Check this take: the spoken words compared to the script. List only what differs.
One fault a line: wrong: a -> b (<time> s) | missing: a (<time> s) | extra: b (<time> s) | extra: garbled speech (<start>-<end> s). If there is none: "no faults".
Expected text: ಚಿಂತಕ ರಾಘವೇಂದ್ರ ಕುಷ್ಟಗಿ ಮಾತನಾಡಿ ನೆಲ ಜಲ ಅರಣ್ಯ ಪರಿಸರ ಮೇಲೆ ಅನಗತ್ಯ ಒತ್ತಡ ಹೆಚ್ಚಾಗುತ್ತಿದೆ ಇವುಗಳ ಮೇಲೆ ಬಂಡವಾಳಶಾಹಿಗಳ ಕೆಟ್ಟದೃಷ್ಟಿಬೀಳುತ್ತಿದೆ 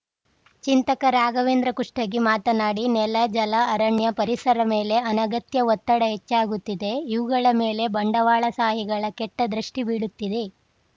no faults